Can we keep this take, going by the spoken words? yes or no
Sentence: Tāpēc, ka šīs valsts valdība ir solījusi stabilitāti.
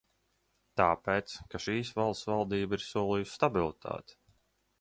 yes